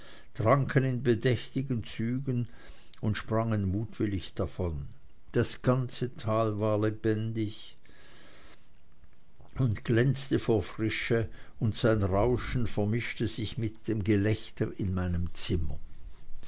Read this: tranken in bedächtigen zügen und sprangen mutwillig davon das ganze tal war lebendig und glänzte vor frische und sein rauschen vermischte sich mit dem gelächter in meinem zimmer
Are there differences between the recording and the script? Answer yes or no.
no